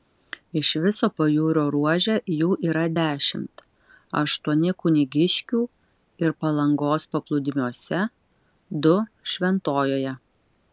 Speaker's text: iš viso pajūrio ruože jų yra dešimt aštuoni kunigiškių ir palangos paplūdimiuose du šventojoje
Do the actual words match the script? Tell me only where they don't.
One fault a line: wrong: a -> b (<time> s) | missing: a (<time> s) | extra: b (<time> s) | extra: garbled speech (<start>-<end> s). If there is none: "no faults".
no faults